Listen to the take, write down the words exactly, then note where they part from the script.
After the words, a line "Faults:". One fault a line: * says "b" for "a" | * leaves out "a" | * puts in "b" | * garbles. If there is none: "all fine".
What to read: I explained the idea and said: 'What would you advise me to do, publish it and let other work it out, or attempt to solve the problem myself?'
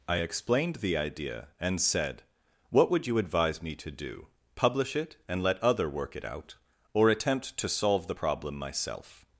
I explained the idea and said: 'What would you advise me to do, publish it and let other work it out, or attempt to solve the problem myself?'
Faults:
all fine